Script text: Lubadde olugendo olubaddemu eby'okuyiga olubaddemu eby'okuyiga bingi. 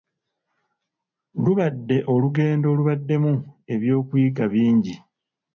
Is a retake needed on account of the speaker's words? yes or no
yes